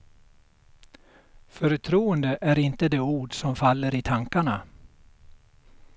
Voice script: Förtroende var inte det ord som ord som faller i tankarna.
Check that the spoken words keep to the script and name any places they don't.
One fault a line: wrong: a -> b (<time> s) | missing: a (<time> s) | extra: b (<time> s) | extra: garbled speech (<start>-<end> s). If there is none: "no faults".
wrong: var -> är (2.4 s)
missing: ord som (3.5 s)